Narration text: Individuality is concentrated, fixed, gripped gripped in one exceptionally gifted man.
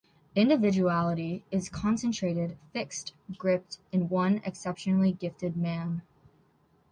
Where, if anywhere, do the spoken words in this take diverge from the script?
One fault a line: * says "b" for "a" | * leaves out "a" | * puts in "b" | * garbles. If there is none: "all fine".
* leaves out "gripped"